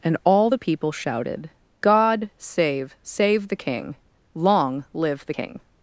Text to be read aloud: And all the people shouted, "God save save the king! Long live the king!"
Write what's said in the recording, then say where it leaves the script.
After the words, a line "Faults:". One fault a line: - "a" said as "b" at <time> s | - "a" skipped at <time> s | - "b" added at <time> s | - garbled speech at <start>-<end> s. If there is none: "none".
And all the people shouted, "God save save the king! Long live the king!"
Faults:
none